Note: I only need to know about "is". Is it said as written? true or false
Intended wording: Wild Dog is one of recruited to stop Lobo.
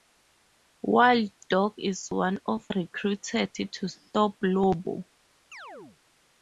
true